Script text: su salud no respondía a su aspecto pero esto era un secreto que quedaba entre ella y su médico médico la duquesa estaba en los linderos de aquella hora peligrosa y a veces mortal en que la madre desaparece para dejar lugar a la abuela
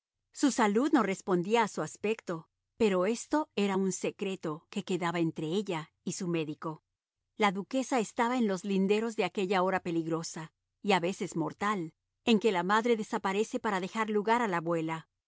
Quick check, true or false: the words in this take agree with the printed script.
false